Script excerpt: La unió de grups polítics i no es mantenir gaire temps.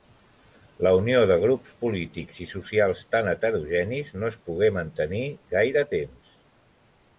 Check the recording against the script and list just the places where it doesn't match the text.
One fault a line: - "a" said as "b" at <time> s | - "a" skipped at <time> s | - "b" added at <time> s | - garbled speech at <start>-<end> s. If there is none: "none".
- "socials tan heterogenis" added at 2.5 s
- "pogué" added at 4.5 s